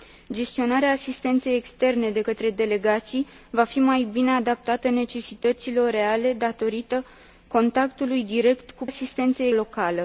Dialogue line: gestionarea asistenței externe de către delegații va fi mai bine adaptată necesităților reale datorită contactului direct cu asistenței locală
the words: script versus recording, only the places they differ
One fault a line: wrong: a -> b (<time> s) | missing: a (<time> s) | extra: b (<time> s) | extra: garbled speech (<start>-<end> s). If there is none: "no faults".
no faults